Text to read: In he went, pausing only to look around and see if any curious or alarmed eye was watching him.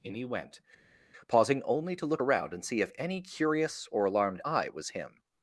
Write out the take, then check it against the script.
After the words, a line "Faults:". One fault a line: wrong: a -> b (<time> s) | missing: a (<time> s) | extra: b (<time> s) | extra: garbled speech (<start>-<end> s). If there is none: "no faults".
In he went, pausing only to look around and see if any curious or alarmed eye was him.
Faults:
missing: watching (4.9 s)